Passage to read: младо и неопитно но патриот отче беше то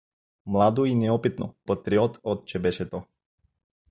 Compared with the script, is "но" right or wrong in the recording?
wrong